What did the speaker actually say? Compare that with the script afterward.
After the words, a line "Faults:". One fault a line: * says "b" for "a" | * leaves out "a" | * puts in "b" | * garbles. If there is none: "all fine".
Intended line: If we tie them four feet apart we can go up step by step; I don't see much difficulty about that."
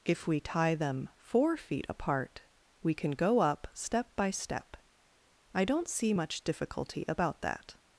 If we tie them four feet apart we can go up step by step; I don't see much difficulty about that."
Faults:
all fine